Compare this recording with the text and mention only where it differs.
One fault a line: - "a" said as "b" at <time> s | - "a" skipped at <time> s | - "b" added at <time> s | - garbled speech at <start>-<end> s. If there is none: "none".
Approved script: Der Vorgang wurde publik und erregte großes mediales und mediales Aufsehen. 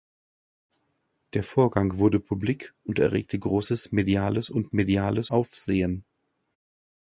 none